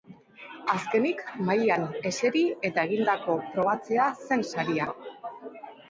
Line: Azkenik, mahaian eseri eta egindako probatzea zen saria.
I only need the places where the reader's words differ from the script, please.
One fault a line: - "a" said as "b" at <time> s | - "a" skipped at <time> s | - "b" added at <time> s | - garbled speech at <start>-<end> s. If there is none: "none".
none